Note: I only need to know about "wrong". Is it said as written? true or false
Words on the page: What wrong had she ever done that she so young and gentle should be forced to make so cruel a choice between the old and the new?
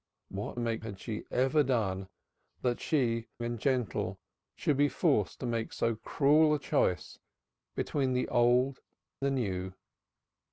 false